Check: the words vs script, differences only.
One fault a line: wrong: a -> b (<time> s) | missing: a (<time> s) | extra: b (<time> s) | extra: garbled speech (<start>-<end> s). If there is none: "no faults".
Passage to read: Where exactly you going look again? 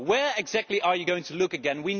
extra: are (0.8 s)
extra: to (1.2 s)